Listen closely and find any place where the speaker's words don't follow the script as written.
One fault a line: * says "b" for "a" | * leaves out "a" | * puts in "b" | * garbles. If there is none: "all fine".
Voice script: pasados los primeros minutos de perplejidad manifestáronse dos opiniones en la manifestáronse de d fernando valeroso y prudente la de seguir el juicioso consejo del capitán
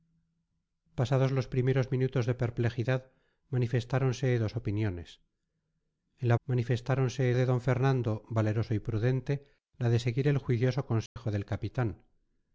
all fine